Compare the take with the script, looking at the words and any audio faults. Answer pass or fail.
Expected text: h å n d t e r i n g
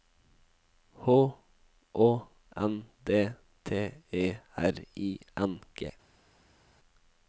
pass